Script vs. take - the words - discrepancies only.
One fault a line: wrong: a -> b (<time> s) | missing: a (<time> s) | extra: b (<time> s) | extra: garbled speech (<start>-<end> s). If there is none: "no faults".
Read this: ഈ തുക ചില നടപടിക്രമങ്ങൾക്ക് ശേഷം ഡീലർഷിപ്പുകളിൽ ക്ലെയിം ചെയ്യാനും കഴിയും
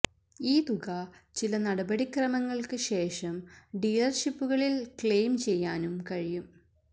no faults